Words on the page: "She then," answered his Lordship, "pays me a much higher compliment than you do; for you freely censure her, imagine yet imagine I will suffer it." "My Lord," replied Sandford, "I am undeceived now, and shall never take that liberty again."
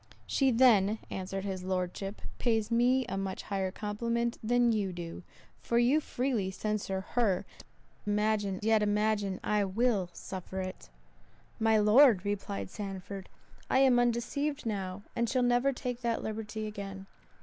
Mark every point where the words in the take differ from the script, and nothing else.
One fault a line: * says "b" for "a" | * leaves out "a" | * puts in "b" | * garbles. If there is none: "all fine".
all fine